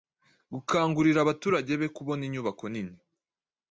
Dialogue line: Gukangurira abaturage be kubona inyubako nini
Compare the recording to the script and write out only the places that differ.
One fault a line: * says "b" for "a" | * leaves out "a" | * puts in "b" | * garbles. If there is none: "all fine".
all fine